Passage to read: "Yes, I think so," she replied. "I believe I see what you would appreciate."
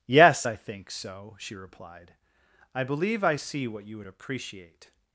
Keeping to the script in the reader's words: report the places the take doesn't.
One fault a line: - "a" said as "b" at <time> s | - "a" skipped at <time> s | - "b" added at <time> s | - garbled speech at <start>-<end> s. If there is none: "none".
none